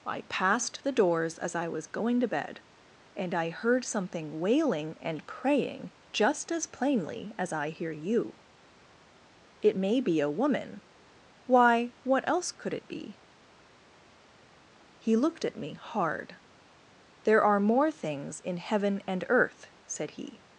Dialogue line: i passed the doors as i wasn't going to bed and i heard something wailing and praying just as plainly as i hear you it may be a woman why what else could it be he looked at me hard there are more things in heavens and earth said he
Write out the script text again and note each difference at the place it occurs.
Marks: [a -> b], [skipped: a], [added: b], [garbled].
i passed the doors as i [wasn't -> was] going to bed and i heard something wailing and praying just as plainly as i hear you it may be a woman why what else could it be he looked at me hard there are more things in [heavens -> heaven] and earth said he